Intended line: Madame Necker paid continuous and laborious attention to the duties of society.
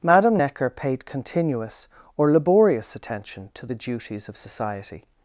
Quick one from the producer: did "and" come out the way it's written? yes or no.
no